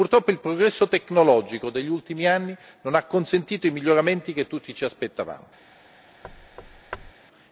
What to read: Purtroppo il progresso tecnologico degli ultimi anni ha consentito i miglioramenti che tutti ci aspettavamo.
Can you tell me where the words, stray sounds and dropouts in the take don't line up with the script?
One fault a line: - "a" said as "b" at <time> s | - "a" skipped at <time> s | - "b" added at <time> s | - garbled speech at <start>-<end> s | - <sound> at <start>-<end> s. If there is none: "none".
- "non" added at 2.8 s
- thud at 6.2-7.1 s